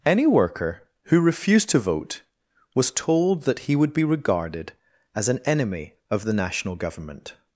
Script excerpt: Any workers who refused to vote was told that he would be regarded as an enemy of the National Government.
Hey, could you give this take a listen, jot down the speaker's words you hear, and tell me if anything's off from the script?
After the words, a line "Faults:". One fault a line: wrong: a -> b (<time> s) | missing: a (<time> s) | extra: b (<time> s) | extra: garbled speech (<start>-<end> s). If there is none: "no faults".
Any worker who refused to vote was told that he would be regarded as an enemy of the National Government.
Faults:
wrong: workers -> worker (0.2 s)